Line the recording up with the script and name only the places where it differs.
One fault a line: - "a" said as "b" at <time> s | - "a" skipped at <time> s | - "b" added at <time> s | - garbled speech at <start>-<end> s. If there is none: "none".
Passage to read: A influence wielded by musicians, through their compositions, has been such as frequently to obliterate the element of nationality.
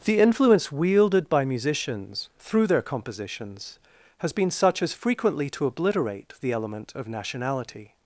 - "A" said as "The" at 0.0 s